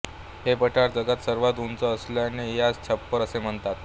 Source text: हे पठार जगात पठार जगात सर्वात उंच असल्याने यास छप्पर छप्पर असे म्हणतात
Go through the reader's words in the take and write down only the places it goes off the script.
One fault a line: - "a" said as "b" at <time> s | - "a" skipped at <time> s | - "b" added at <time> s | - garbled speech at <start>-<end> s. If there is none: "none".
- "पठार जगात" skipped at 1.2 s
- "छप्पर" skipped at 3.2 s